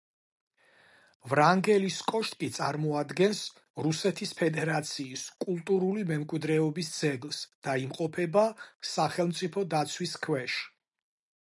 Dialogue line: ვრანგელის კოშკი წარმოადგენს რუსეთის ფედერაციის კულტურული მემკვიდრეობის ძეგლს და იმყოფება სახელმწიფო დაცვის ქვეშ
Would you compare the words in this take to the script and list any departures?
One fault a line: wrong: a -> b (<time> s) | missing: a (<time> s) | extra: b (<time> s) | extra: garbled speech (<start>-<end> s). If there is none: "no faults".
no faults